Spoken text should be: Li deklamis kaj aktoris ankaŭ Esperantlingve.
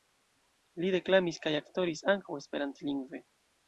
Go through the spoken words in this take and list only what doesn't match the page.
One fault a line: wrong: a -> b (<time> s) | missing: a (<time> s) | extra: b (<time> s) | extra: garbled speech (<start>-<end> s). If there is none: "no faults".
no faults